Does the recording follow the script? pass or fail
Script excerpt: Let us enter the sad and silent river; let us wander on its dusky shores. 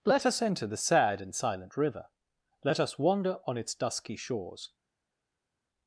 pass